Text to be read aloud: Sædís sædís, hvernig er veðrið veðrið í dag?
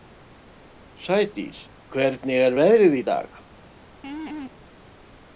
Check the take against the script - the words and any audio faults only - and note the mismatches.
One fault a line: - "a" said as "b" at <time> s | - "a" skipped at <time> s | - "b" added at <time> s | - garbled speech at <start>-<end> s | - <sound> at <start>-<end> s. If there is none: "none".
- "sædís" skipped at 1.6 s
- "veðrið" skipped at 3.0 s
- laugh at 4.0-4.5 s